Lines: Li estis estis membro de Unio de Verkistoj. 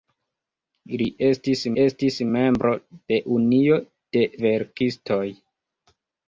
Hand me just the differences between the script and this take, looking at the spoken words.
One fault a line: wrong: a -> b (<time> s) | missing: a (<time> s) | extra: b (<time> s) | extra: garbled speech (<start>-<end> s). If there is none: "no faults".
no faults